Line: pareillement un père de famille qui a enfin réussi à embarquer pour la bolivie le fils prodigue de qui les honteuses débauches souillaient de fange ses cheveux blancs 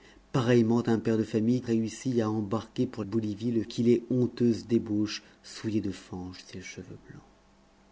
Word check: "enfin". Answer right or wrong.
wrong